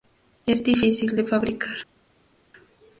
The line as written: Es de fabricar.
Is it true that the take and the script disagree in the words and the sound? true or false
true